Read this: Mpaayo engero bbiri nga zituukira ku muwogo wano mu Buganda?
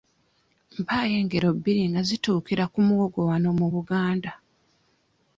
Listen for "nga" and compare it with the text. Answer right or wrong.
right